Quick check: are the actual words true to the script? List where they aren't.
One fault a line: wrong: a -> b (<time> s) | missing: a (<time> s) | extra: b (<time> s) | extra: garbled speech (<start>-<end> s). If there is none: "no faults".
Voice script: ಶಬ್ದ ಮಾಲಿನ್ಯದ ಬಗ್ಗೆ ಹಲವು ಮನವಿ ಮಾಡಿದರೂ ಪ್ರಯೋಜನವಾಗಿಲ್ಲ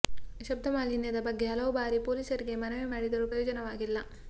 extra: ಬಾರಿ ಪೊಲೀಸರಿಗೆ (1.8 s)